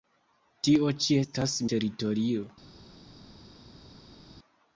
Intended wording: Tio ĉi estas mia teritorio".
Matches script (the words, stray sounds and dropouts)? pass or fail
fail